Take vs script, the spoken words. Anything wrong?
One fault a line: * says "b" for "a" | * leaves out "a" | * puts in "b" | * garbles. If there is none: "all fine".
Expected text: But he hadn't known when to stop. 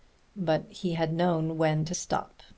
* says "had" for "hadn't"